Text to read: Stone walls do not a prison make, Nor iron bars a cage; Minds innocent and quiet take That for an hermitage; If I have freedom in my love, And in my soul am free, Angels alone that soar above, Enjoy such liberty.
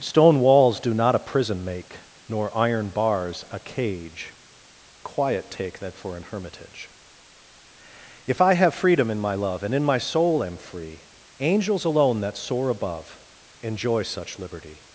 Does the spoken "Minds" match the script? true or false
false